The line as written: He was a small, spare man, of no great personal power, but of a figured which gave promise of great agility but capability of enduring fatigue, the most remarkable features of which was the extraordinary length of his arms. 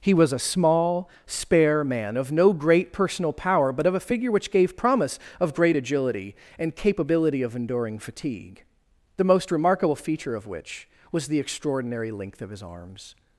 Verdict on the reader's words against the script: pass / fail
fail